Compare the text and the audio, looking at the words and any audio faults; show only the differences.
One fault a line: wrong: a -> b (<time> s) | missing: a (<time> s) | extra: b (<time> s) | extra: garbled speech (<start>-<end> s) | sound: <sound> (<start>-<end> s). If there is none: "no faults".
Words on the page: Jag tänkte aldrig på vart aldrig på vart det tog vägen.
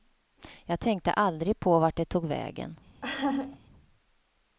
missing: aldrig på vart (2.0 s)
sound: laugh (3.0-3.6 s)